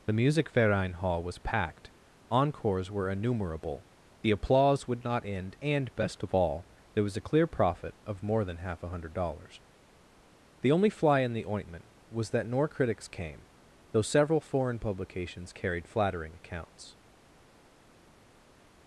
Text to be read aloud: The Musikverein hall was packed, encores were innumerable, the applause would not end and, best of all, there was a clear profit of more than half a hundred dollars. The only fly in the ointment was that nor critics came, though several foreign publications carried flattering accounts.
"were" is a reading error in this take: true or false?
false